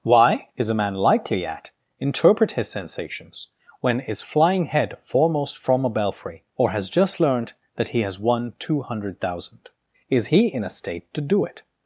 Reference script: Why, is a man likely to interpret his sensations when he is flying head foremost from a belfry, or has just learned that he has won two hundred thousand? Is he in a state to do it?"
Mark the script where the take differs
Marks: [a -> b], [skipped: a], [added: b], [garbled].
Why, is a man likely [to -> at] interpret his sensations when [skipped: he] is flying head foremost from a belfry, or has just learned that he has won two hundred thousand? Is he in a state to do it?"